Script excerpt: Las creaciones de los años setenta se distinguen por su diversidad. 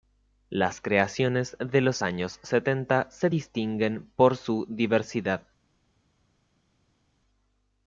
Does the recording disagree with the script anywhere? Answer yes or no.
no